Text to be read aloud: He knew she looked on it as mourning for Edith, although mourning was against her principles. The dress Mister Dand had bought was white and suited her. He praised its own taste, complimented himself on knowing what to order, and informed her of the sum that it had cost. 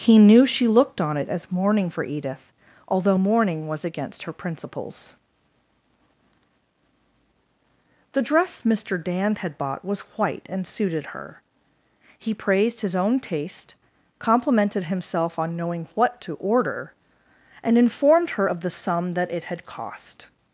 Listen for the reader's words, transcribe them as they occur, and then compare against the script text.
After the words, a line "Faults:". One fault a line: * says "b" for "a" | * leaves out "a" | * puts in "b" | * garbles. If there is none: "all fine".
He knew she looked on it as mourning for Edith, although mourning was against her principles. The dress Mister Dand had bought was white and suited her. He praised his own taste, complimented himself on knowing what to order, and informed her of the sum that it had cost.
Faults:
* says "his" for "its"